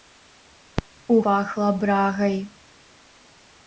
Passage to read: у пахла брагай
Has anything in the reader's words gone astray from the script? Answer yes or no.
no